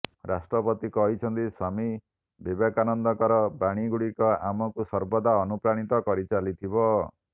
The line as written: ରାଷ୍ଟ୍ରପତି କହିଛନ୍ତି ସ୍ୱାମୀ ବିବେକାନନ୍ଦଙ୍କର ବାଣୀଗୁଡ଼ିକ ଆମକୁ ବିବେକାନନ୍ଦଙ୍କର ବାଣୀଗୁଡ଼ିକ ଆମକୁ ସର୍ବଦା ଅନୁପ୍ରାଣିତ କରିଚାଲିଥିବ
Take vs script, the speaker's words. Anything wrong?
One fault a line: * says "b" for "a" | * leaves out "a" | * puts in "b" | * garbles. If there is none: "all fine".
* leaves out "ବିବେକାନନ୍ଦଙ୍କର ବାଣୀଗୁଡ଼ିକ ଆମକୁ"